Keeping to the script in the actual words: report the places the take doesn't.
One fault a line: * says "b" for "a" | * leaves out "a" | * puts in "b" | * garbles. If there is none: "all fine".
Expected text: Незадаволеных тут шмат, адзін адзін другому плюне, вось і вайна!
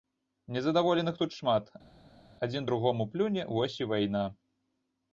* leaves out "адзін"